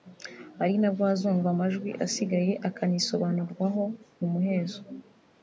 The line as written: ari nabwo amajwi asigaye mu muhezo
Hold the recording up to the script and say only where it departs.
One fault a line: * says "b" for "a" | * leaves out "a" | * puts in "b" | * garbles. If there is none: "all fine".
* puts in "hazumvwa"
* puts in "akanisobanurwaho"